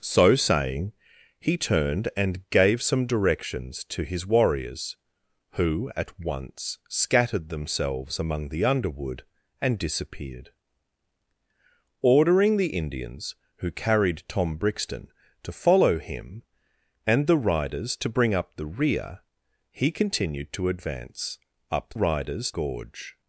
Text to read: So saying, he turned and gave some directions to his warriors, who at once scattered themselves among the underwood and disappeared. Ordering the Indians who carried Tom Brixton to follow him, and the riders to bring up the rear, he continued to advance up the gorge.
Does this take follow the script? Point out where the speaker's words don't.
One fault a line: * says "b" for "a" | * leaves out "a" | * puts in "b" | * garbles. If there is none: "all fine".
* says "riders" for "the"